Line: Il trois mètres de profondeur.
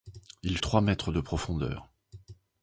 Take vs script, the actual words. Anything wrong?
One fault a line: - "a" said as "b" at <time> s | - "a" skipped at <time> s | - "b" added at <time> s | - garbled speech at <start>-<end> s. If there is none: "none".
none